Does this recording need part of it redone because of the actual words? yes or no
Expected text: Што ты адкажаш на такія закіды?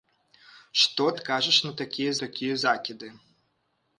yes